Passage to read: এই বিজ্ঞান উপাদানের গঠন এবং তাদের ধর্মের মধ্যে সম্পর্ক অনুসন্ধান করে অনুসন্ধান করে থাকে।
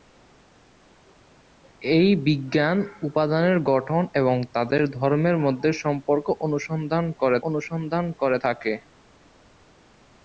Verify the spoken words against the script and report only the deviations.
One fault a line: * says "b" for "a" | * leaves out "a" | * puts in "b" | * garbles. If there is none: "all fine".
all fine